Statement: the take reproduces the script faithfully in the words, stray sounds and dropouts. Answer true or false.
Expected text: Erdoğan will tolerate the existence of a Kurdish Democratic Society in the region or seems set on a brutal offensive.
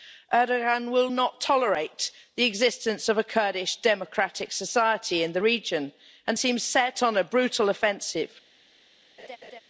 false